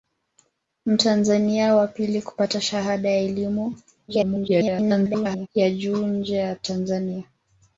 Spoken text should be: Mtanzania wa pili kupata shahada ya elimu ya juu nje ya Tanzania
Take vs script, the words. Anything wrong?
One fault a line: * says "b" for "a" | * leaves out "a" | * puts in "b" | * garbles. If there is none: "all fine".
* garbles